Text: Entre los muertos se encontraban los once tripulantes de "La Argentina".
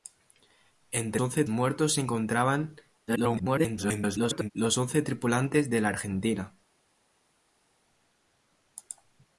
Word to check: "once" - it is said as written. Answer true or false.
true